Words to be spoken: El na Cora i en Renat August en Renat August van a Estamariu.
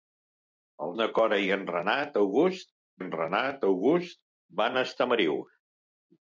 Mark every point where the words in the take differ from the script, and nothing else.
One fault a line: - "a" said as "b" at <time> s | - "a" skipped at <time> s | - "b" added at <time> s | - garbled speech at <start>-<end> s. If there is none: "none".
none